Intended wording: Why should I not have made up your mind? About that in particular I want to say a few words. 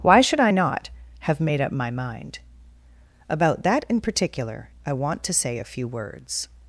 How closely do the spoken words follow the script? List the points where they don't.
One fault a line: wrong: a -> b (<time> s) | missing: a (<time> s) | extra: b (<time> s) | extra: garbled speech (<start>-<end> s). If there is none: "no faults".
wrong: your -> my (1.7 s)